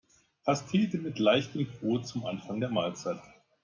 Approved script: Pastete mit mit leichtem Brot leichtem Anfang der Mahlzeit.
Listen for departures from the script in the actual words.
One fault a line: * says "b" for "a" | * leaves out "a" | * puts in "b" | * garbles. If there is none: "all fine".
* leaves out "mit"
* says "zum" for "leichtem"